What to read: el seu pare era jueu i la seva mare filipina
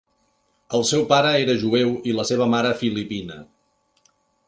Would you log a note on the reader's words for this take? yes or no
no